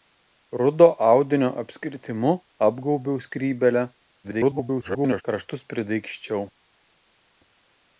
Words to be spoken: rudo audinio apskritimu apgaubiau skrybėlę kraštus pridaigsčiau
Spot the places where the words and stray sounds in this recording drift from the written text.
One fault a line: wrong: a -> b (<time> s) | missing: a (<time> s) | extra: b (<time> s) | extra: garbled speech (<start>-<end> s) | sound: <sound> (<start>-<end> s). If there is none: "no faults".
extra: garbled speech (4.2-5.2 s)